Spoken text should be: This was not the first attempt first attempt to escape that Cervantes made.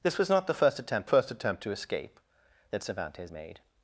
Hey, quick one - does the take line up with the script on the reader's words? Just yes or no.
yes